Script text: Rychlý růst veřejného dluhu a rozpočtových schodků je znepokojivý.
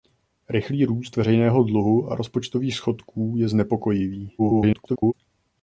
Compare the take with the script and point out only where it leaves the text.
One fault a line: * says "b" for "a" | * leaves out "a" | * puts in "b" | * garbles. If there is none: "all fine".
* garbles